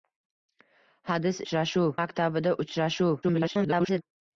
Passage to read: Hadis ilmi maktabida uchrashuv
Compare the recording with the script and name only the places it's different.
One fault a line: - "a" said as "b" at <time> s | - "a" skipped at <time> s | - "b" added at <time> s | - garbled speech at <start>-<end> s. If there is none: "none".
- "ilmi" said as "uchrashuv" at 1.4 s
- garbled speech at 3.2-4.0 s